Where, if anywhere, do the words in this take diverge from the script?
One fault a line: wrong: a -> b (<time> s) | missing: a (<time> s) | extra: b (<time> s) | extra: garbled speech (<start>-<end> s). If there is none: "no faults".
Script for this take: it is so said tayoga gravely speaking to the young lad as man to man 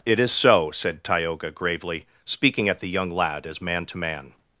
wrong: to -> at (2.7 s)